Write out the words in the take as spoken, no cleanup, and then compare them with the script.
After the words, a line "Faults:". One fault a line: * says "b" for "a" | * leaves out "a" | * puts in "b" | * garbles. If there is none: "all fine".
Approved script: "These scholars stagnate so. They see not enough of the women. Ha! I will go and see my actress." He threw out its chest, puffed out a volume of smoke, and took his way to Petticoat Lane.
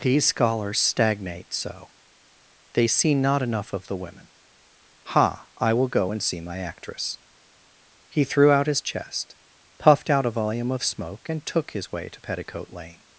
"These scholars stagnate so. They see not enough of the women. Ha! I will go and see my actress." He threw out his chest, puffed out a volume of smoke, and took his way to Petticoat Lane.
Faults:
* says "his" for "its"